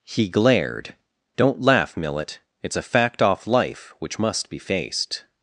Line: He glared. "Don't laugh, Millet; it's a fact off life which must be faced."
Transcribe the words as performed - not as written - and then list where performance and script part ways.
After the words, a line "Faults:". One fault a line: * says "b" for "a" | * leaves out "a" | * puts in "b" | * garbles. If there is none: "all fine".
He glared. "Don't laugh, Millet; it's a fact off life which must be faced."
Faults:
all fine